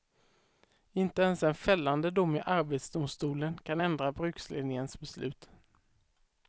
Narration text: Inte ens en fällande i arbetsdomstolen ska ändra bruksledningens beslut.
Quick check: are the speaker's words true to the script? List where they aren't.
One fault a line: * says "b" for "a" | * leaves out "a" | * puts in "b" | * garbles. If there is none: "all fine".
* puts in "dom"
* says "kan" for "ska"